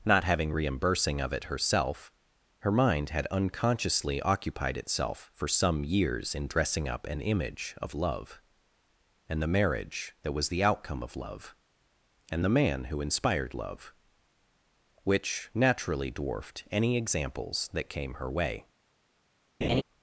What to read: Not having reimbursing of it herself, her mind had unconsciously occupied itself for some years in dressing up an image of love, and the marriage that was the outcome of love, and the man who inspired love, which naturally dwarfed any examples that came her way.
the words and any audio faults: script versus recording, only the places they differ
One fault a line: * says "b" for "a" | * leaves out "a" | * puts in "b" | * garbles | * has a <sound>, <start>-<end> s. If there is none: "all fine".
* has a laugh, 19.6-19.8 s